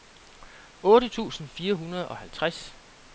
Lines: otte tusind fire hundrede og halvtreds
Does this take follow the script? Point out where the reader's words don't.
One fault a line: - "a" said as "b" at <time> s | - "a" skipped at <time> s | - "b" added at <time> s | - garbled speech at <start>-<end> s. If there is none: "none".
none